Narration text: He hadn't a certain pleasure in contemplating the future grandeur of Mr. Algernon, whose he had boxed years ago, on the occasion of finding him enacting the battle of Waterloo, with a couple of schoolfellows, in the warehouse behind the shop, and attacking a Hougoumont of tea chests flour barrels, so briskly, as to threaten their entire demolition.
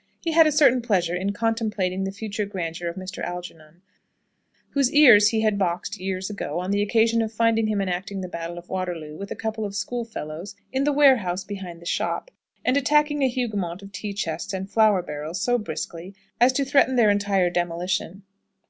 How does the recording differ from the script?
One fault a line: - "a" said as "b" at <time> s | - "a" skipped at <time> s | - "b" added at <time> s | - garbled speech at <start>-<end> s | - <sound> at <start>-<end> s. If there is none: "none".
- "hadn't" said as "had" at 0.3 s
- "ears" added at 4.9 s
- "and" added at 14.5 s